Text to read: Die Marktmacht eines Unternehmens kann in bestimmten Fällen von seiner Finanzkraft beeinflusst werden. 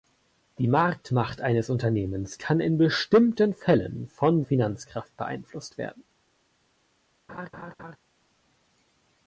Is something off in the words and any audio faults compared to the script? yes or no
yes